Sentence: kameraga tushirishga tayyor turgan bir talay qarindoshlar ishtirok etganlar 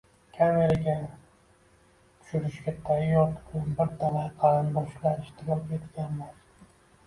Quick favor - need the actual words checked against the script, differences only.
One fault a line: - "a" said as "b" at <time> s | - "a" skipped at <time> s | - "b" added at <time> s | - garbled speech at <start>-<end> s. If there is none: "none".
none